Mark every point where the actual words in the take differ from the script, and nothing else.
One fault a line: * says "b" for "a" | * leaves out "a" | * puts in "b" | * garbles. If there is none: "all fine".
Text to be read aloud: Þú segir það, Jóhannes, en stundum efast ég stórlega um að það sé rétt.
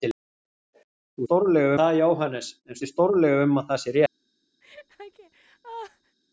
* says "stórlega" for "segir"
* leaves out "stundum efast"